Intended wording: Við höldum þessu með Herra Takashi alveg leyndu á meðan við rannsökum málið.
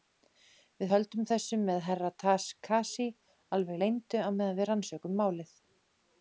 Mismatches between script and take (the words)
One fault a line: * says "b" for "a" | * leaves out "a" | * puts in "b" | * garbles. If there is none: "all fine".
all fine